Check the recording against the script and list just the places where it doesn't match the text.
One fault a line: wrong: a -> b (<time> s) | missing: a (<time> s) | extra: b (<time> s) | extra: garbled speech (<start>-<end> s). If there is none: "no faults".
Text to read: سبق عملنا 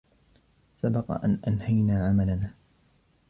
extra: أن أنهينا (1.2 s)